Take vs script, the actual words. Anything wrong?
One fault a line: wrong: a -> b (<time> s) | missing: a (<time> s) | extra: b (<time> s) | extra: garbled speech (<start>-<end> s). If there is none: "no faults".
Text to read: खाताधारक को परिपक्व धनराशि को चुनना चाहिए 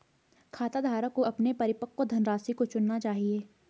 extra: अपने (1.2 s)